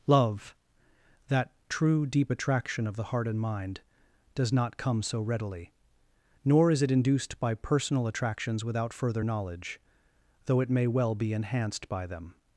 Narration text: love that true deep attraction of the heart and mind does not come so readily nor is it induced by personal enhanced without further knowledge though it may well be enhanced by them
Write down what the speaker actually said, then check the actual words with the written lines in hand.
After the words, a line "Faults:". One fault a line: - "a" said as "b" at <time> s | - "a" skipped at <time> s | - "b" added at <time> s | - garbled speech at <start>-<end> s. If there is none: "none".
love that true deep attraction of the heart and mind does not come so readily nor is it induced by personal attractions without further knowledge though it may well be enhanced by them
Faults:
- "enhanced" said as "attractions" at 8.1 s